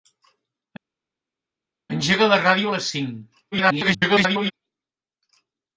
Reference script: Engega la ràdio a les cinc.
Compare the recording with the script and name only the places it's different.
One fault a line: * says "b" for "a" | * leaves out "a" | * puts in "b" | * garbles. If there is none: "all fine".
* garbles